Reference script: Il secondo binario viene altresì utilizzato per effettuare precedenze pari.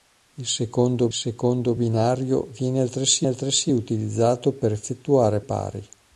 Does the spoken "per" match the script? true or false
true